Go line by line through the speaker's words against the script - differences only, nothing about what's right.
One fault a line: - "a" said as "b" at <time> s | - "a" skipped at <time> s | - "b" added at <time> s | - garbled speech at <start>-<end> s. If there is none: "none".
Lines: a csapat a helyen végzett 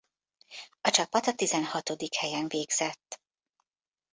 - "tizenhatodik" added at 1.3 s